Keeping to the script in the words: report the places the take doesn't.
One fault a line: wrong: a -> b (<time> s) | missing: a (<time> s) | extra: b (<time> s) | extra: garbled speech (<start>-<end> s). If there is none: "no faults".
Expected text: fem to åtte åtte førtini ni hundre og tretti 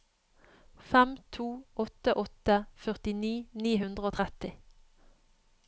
no faults